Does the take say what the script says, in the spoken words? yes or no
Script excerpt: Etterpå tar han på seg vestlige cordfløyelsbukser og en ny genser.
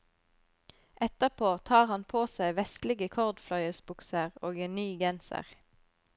yes